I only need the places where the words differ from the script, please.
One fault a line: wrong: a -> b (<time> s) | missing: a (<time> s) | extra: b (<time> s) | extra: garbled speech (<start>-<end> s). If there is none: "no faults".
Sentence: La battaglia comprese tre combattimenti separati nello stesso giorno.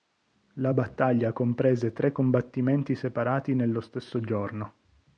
no faults